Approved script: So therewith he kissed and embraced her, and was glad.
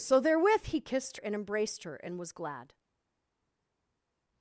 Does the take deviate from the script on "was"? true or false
false